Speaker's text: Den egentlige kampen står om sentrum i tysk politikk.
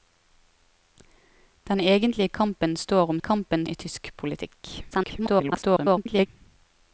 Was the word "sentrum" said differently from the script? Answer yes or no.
yes